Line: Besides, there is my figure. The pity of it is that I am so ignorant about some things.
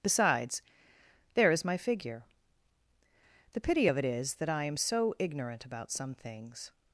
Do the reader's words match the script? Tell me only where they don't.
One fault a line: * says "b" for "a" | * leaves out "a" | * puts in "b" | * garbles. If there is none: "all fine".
all fine